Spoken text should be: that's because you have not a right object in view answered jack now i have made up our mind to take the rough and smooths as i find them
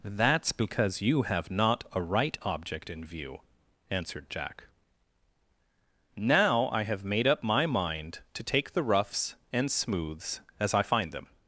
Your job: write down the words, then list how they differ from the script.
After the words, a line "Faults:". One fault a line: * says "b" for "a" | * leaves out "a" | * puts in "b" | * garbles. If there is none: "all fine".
that's because you have not a right object in view answered jack now i have made up my mind to take the roughs and smooths as i find them
Faults:
* says "my" for "our"
* says "roughs" for "rough"